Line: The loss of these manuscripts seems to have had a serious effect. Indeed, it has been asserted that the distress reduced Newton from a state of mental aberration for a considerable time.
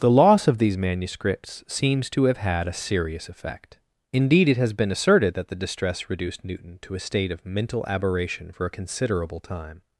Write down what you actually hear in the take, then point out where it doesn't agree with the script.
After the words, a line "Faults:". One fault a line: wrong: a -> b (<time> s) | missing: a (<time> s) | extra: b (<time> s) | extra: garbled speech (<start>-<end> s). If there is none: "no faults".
The loss of these manuscripts seems to have had a serious effect. Indeed, it has been asserted that the distress reduced Newton to a state of mental aberration for a considerable time.
Faults:
wrong: from -> to (6.8 s)